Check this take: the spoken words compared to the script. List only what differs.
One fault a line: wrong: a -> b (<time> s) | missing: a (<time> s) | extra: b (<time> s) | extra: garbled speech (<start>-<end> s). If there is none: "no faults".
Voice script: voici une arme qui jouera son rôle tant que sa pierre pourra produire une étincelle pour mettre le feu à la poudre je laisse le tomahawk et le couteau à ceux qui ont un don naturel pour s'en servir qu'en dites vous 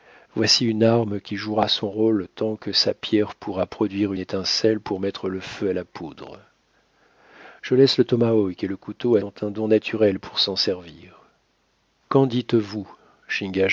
missing: une (4.1 s)
missing: ceux qui (9.2 s)